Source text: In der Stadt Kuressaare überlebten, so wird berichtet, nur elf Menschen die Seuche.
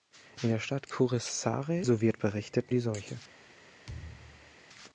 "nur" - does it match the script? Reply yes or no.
no